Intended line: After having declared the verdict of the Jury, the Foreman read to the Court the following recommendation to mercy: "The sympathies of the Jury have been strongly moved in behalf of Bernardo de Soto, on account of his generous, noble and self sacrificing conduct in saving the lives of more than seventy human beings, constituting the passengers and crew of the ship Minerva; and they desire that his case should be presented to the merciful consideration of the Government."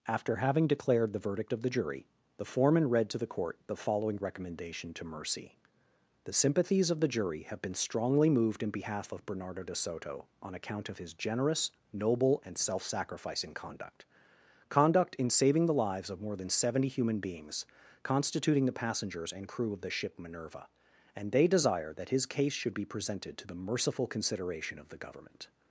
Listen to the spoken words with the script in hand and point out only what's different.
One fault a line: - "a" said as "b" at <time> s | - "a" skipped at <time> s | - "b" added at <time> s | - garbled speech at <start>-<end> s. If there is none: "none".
- "conduct" added at 14.7 s